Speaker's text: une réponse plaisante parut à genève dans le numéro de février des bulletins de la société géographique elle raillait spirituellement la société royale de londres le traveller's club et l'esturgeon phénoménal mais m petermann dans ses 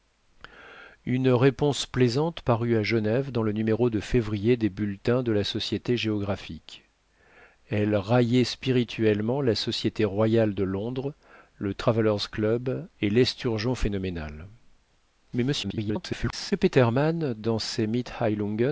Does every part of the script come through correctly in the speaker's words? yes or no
no